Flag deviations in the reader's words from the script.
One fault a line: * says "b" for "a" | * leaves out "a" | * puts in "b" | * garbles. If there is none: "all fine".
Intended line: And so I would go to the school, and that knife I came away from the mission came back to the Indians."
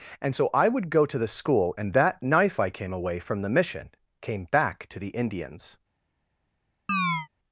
all fine